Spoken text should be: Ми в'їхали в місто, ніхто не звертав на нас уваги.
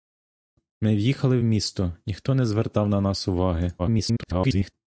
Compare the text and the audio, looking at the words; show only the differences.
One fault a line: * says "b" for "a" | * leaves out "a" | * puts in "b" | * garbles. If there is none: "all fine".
* garbles